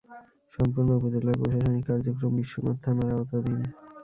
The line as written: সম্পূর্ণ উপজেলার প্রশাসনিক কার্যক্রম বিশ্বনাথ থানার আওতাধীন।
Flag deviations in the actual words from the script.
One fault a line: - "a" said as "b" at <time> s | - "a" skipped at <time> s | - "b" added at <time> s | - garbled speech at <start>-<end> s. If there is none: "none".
none